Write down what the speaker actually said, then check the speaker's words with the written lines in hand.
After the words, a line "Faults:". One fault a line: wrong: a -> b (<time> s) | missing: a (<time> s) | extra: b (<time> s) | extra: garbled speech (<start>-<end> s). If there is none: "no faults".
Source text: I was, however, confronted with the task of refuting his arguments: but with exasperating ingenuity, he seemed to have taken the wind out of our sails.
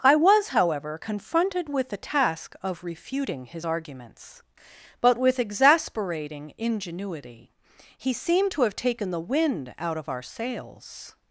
I was, however, confronted with the task of refuting his arguments: but with exasperating ingenuity, he seemed to have taken the wind out of our sails.
Faults:
no faults